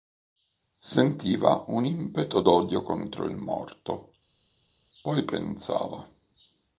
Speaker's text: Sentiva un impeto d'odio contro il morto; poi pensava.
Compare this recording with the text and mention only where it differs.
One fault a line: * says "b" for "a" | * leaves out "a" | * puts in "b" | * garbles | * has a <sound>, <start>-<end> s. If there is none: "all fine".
all fine